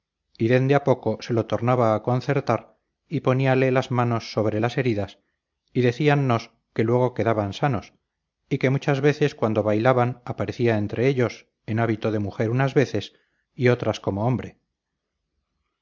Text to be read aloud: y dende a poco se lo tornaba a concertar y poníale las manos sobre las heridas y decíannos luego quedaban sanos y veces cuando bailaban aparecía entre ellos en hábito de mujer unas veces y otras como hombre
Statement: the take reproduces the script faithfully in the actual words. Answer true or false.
false